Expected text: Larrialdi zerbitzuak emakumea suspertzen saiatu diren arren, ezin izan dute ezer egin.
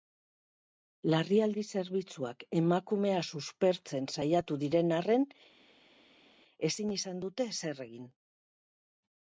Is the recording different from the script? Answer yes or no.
no